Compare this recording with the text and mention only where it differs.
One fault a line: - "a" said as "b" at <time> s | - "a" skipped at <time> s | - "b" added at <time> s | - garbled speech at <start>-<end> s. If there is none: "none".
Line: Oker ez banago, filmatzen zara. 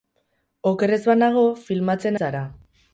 none